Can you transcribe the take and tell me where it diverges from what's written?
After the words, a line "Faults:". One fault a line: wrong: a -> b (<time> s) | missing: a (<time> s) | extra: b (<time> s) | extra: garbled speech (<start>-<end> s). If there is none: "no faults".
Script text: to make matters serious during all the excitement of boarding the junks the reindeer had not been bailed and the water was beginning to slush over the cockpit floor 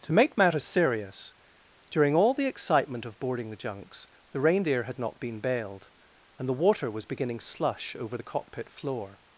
to make matters serious during all the excitement of boarding the junks the reindeer had not been bailed and the water was beginning slush over the cockpit floor
Faults:
missing: to (7.4 s)